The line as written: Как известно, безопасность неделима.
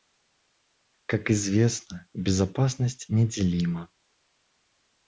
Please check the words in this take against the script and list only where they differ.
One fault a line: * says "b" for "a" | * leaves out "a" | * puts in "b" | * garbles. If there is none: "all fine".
all fine